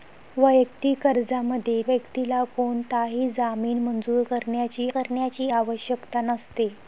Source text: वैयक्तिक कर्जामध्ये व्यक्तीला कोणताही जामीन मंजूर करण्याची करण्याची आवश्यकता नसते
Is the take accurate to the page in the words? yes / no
yes